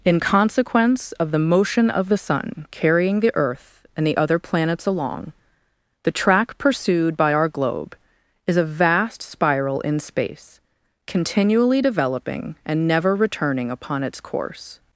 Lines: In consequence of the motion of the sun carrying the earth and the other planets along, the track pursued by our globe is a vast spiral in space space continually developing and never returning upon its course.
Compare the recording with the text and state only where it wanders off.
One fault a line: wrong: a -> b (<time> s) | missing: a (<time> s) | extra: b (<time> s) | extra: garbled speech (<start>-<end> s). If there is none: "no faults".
missing: space (10.6 s)